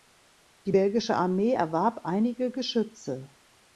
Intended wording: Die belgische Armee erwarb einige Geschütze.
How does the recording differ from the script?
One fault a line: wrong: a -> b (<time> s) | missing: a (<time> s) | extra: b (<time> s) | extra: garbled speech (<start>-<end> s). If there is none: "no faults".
no faults